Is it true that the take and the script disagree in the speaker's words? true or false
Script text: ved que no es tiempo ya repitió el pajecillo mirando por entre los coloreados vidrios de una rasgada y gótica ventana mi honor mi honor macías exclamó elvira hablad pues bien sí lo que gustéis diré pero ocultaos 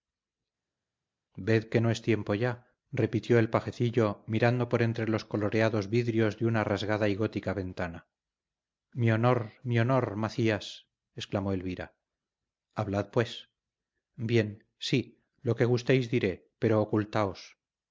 false